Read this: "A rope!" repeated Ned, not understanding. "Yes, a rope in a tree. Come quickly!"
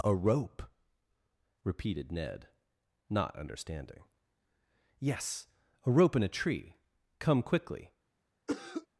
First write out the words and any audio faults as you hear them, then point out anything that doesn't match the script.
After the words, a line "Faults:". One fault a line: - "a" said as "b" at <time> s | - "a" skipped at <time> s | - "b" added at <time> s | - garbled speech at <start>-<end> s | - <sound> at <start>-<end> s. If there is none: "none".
"A rope!" repeated Ned, not understanding. "Yes, a rope in a tree. Come quickly!"
Faults:
- cough at 8.5-8.9 s